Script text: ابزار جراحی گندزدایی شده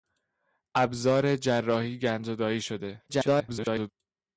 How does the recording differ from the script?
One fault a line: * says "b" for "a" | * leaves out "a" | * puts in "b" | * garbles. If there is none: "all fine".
* garbles